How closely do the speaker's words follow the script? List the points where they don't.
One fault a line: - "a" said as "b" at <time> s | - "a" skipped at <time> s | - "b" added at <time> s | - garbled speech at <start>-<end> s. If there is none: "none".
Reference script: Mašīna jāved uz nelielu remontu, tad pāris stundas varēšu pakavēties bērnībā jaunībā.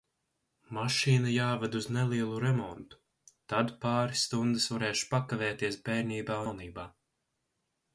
none